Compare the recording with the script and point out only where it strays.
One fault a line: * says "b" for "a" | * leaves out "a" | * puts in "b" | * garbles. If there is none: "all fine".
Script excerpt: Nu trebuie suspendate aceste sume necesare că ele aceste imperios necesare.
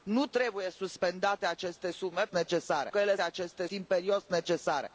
all fine